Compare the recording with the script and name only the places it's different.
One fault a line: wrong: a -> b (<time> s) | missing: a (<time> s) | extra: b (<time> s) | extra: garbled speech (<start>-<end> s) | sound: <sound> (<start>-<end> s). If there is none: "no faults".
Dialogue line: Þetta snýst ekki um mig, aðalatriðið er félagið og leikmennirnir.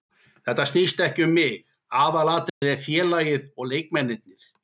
sound: dropout (2.5-2.6 s)